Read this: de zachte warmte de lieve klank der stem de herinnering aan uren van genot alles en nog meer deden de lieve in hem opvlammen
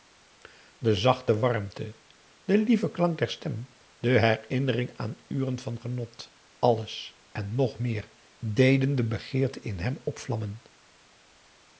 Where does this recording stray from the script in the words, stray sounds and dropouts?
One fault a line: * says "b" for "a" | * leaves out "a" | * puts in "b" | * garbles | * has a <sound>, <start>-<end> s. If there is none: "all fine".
* says "begeerte" for "lieve"